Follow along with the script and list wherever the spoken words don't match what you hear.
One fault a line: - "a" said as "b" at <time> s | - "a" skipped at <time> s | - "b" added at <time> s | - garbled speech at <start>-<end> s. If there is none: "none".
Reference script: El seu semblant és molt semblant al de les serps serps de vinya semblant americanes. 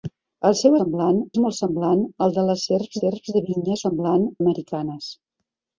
none